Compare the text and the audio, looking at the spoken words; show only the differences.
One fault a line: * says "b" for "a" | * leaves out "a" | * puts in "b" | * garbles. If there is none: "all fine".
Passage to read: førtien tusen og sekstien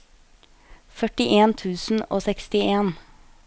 all fine